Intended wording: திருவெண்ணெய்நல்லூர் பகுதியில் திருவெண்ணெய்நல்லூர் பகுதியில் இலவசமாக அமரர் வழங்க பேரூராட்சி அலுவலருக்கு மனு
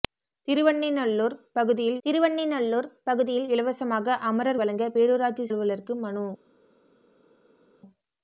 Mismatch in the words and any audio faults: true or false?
false